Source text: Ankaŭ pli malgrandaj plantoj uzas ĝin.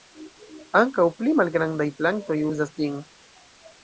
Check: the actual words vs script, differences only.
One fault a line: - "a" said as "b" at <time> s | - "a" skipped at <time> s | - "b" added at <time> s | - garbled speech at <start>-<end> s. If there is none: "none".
none